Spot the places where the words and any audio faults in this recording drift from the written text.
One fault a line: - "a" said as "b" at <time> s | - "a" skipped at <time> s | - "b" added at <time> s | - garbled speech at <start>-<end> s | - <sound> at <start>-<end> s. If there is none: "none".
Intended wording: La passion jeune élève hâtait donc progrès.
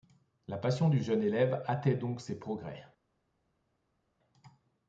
- "du" added at 0.9 s
- "ses" added at 2.2 s